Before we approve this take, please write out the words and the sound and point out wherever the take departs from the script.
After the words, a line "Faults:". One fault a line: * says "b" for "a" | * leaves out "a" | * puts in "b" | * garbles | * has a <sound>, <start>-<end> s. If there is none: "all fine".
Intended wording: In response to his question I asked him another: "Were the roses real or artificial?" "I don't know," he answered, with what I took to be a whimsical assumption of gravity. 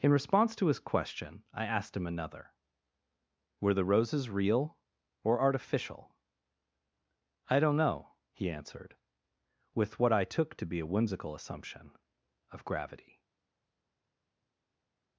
In response to his question I asked him another: "Were the roses real or artificial?" "I don't know," he answered, with what I took to be a whimsical assumption of gravity.
Faults:
all fine